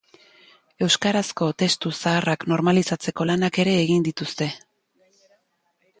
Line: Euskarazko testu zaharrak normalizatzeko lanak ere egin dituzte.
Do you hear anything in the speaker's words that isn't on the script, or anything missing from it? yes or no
no